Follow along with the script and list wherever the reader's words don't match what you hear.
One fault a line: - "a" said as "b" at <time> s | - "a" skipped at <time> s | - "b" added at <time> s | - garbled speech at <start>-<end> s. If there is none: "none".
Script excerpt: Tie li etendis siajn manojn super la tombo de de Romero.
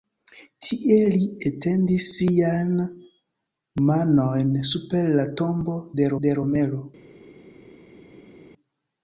none